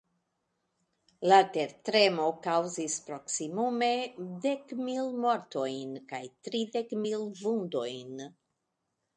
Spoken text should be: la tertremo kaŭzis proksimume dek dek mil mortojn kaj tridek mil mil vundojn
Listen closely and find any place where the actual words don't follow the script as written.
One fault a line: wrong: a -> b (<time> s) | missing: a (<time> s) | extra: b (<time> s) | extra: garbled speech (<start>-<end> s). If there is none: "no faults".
missing: dek (4.7 s)
missing: mil (7.3 s)